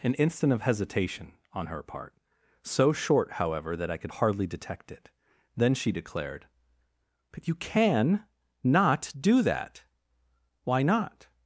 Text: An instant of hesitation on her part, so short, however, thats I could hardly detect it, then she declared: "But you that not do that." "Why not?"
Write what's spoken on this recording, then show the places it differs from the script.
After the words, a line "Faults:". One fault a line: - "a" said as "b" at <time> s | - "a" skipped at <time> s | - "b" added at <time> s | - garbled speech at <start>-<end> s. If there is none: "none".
An instant of hesitation on her part, so short, however, that I could hardly detect it, then she declared: "But you can not do that." "Why not?"
Faults:
- "thats" said as "that" at 3.8 s
- "that" said as "can" at 7.6 s